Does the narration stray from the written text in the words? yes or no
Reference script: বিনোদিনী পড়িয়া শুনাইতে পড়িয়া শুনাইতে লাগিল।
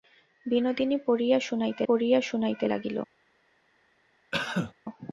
no